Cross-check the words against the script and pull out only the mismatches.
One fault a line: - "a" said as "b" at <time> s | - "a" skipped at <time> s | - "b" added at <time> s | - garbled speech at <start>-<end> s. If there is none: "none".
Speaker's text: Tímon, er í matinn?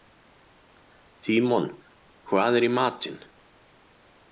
- "hvað" added at 2.3 s